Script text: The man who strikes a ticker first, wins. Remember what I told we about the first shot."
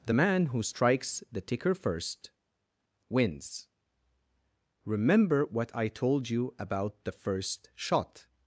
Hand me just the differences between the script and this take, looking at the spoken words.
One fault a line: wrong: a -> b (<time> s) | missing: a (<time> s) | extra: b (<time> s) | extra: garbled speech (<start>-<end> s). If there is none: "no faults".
wrong: a -> the (1.3 s)
wrong: we -> you (6.3 s)